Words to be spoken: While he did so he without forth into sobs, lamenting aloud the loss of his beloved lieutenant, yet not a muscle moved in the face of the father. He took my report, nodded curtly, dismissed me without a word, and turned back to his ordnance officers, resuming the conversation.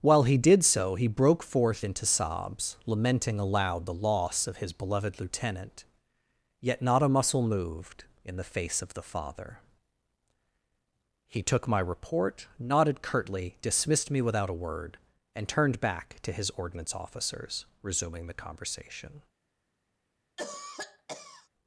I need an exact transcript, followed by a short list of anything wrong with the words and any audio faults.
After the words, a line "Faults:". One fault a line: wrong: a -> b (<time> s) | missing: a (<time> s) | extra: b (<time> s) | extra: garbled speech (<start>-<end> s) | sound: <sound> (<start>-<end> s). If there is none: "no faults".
While he did so he broke forth into sobs, lamenting aloud the loss of his beloved lieutenant, yet not a muscle moved in the face of the father. He took my report, nodded curtly, dismissed me without a word, and turned back to his ordnance officers, resuming the conversation.
Faults:
wrong: without -> broke (1.1 s)
sound: cough (20.4-21.5 s)